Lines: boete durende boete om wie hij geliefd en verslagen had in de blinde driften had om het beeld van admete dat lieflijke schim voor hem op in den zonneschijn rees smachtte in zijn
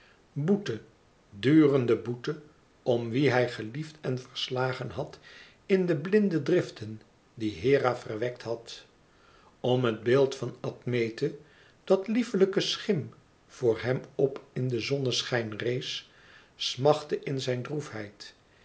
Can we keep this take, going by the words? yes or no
no